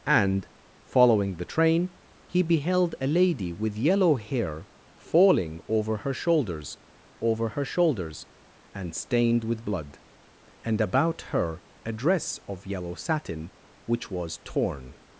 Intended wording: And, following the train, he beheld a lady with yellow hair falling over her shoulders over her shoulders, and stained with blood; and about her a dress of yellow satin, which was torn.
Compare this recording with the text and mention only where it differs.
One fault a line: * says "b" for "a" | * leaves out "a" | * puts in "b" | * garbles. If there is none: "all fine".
all fine